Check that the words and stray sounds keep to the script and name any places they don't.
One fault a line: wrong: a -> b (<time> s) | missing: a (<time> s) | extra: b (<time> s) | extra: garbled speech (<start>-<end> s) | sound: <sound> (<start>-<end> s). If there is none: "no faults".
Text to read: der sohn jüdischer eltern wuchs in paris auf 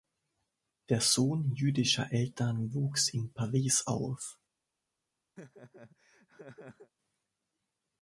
sound: laugh (5.4-6.9 s)